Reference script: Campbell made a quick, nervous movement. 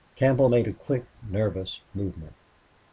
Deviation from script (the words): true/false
false